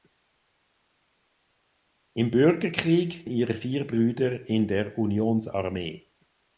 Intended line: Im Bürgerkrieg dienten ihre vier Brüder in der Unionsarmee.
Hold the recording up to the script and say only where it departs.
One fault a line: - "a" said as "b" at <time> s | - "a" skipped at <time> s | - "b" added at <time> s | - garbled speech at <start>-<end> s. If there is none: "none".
- "dienten" skipped at 3.3 s